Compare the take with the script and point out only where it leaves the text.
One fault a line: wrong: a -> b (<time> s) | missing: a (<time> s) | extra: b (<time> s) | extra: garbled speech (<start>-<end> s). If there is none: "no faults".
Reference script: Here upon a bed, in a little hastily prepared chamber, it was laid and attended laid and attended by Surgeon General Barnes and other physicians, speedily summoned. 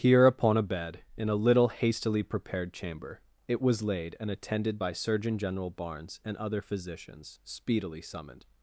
missing: laid and attended (4.8 s)